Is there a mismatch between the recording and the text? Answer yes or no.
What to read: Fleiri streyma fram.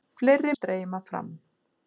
no